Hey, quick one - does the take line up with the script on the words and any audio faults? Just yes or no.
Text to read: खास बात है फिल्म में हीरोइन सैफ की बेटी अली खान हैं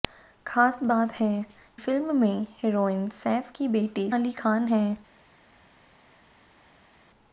yes